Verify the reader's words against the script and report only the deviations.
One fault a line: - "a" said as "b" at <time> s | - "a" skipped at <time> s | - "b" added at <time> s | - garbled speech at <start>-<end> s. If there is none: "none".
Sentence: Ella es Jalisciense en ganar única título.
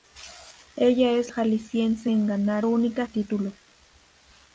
none